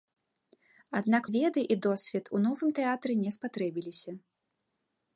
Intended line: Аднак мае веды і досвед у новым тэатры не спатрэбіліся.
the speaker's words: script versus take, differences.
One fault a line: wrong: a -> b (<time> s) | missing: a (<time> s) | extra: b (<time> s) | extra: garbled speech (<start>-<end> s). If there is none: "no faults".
missing: мае (1.2 s)